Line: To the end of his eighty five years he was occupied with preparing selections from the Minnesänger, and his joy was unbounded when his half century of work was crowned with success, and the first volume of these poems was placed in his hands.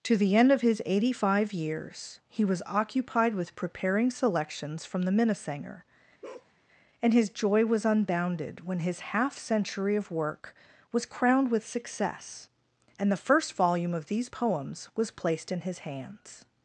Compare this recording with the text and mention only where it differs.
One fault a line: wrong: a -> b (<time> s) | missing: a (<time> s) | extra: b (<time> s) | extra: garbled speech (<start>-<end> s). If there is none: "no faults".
no faults